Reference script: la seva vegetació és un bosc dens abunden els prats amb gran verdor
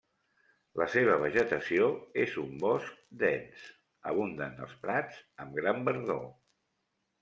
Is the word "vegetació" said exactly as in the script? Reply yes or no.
yes